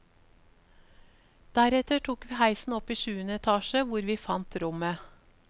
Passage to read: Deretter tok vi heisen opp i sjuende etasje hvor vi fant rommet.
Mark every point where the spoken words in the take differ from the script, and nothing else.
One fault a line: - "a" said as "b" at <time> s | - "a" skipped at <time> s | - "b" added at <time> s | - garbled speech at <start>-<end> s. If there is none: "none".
none